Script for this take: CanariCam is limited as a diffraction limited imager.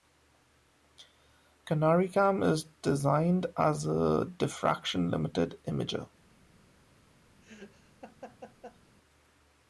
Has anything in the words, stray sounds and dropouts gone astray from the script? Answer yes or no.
yes